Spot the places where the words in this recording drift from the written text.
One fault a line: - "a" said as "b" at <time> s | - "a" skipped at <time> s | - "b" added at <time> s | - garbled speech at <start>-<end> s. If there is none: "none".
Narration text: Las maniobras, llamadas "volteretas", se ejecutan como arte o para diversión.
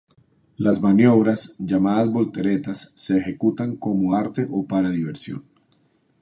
none